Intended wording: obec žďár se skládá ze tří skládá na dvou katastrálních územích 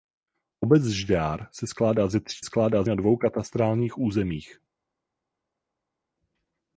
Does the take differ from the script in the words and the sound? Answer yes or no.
no